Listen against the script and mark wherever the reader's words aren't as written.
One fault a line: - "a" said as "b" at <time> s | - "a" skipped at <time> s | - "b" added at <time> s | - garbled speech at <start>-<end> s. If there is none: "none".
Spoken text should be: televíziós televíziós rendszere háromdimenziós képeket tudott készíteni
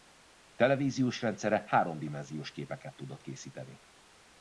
- "televíziós" skipped at 1.2 s